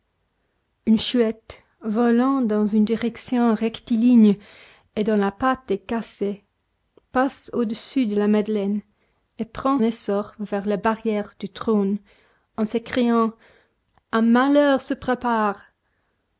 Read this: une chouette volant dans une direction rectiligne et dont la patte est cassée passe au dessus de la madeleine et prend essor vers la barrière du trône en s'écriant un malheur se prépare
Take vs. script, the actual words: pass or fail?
pass